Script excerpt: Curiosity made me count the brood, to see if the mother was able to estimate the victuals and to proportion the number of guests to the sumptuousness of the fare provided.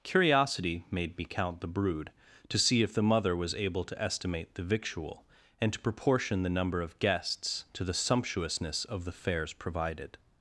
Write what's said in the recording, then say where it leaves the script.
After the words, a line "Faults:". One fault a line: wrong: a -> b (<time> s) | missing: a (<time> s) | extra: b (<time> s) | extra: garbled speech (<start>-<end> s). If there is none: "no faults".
Curiosity made me count the brood, to see if the mother was able to estimate the victual and to proportion the number of guests to the sumptuousness of the fares provided.
Faults:
wrong: victuals -> victual (4.6 s)
wrong: fare -> fares (9.1 s)